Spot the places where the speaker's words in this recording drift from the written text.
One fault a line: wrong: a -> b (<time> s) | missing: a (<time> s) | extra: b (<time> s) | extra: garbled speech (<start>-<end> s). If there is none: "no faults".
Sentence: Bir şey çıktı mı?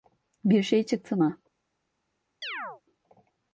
no faults